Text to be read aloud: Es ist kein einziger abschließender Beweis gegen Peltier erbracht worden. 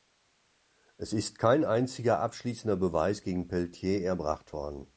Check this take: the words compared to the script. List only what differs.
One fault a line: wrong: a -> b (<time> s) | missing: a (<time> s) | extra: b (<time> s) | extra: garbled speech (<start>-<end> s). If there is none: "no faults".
no faults